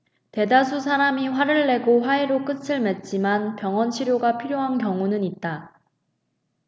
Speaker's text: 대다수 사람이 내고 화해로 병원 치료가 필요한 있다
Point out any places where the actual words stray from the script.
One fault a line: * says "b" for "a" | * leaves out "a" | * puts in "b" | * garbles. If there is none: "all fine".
* puts in "화를"
* puts in "끝을 맺지만"
* puts in "경우는"